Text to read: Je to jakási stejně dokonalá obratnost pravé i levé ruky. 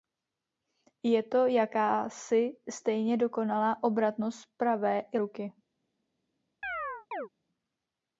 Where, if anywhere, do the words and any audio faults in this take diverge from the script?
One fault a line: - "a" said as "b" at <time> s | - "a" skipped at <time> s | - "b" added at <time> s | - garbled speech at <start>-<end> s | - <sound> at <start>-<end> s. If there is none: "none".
- "levé" skipped at 5.2 s
- chirp at 6.6-7.3 s